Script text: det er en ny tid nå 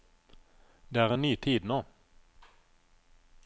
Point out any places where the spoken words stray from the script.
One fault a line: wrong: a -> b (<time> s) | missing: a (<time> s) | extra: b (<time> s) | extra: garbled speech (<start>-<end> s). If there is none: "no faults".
no faults